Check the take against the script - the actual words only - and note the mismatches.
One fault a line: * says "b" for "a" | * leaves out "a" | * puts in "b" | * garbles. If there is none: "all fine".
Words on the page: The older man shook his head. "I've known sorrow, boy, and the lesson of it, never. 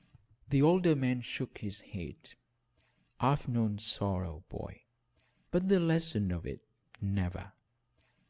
* says "but" for "and"